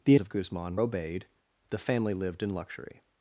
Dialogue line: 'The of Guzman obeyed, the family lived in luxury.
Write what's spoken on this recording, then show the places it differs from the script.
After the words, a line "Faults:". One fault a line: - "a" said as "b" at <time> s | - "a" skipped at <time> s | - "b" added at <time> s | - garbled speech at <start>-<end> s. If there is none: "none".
'The of Guzman obeyed, the family lived in luxury.
Faults:
none